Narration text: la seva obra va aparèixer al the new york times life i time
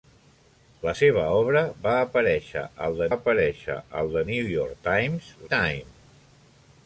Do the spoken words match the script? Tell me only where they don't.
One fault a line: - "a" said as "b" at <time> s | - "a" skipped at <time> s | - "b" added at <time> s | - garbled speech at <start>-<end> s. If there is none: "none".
- "aparèixer al the" added at 3.2 s
- "life" skipped at 5.3 s